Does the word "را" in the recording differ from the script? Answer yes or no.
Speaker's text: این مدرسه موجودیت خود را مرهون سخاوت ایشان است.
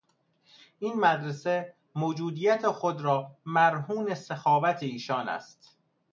no